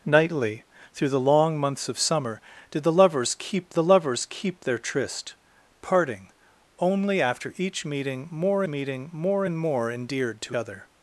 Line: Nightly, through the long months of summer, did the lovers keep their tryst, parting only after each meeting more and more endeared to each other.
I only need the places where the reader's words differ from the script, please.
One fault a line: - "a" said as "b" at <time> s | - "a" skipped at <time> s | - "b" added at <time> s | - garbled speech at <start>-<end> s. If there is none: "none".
- "the lovers keep" added at 3.7 s
- "meeting more" added at 8.7 s
- "each" skipped at 10.6 s